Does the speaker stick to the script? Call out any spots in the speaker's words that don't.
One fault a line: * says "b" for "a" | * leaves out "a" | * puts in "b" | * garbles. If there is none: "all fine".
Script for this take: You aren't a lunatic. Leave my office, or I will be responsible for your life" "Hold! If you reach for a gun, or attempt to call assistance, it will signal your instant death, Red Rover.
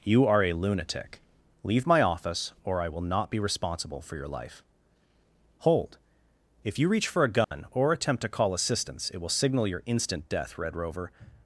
* says "are" for "aren't"
* puts in "not"